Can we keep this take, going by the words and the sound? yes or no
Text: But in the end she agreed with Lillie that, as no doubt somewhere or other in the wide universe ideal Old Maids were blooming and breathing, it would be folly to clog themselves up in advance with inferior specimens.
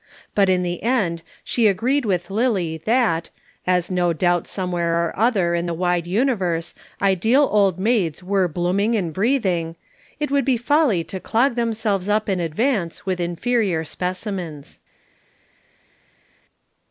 yes